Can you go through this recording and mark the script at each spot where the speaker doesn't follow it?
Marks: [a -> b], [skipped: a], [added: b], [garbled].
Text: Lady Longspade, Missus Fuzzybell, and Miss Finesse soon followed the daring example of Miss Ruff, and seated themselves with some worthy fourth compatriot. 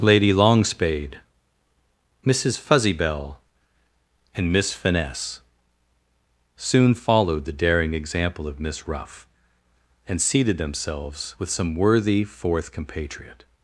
Lady Longspade, Missus Fuzzybell, and Miss Finesse soon followed the daring example of Miss Ruff, and seated themselves with some worthy fourth compatriot.